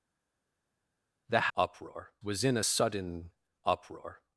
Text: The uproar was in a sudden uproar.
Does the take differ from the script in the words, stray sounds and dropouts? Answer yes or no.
no